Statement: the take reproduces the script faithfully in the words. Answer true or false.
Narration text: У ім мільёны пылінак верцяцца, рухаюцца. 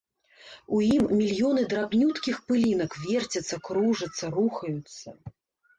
false